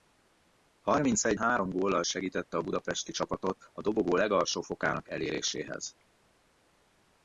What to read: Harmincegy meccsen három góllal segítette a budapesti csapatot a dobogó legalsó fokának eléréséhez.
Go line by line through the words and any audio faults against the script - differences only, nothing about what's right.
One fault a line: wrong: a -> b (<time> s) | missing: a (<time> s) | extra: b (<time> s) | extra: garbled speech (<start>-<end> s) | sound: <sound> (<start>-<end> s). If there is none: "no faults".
missing: meccsen (1.4 s)